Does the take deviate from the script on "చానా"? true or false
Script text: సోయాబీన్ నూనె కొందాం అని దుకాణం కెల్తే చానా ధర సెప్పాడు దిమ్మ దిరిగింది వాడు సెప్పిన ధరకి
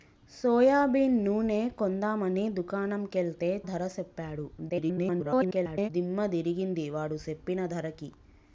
true